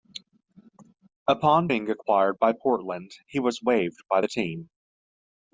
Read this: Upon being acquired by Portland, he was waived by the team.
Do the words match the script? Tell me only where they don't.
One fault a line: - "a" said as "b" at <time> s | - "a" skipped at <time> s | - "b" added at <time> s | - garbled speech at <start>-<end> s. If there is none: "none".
none